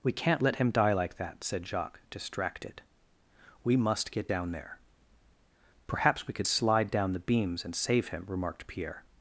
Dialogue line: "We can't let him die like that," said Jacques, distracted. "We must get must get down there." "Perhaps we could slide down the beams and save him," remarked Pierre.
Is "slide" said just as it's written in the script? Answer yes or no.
yes